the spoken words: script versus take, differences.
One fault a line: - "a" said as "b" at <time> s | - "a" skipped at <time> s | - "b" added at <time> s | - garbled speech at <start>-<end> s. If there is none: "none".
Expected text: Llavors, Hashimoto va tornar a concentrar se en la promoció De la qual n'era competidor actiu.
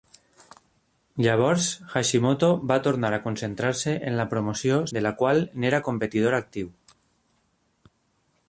none